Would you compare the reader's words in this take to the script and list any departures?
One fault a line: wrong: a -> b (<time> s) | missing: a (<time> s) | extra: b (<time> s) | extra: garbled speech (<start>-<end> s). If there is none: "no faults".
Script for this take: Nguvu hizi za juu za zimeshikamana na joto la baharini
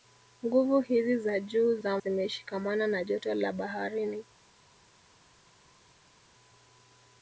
no faults